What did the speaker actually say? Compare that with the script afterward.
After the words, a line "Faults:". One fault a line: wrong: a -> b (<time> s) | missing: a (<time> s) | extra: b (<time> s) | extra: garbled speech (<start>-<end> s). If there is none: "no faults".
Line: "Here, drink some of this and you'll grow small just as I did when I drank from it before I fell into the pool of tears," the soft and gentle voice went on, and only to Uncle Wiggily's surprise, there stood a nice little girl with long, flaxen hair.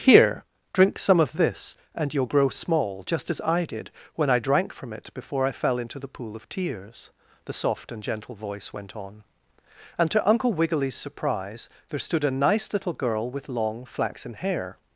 "Here, drink some of this and you'll grow small just as I did when I drank from it before I fell into the pool of tears," the soft and gentle voice went on, and to Uncle Wiggily's surprise, there stood a nice little girl with long, flaxen hair.
Faults:
missing: only (10.1 s)